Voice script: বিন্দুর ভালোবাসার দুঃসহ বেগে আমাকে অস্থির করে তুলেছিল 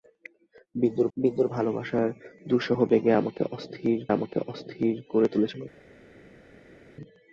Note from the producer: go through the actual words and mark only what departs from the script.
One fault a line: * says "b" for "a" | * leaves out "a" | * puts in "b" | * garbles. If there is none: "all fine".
* puts in "বিন্দুর"
* puts in "আমাকে অস্থির"